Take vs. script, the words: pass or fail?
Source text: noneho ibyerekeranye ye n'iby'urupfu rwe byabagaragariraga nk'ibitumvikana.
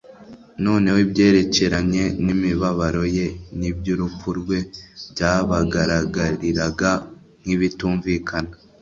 fail